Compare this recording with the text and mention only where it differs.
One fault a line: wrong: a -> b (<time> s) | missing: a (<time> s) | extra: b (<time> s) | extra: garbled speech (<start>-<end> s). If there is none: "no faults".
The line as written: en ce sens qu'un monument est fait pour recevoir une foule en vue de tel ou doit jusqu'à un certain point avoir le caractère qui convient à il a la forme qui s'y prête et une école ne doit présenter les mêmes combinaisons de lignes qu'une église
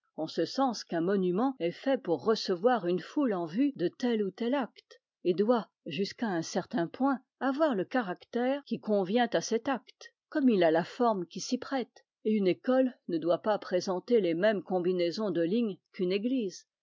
extra: tel acte et (4.3 s)
extra: cet acte comme (9.4 s)
extra: pas (13.4 s)